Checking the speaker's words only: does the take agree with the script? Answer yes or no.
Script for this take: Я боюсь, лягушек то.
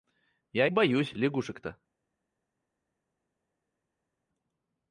yes